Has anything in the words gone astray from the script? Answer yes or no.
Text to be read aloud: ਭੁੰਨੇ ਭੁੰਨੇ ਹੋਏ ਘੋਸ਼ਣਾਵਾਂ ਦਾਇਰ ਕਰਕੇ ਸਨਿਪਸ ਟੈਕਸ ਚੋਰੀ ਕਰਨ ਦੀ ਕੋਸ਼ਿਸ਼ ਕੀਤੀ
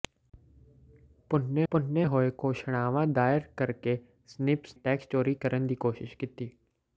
no